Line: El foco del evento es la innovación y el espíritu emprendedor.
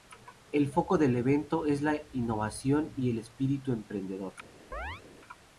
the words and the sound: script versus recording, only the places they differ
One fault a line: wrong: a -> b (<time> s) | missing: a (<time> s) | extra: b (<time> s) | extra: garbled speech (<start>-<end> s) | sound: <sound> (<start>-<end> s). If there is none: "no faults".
sound: chirp (4.7-5.0 s)